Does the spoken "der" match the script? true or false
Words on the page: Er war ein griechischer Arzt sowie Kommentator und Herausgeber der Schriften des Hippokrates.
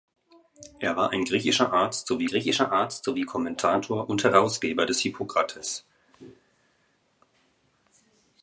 false